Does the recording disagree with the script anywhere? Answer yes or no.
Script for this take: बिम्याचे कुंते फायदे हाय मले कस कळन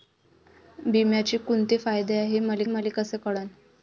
yes